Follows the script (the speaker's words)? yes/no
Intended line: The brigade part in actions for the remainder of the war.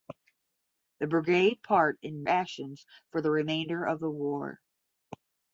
yes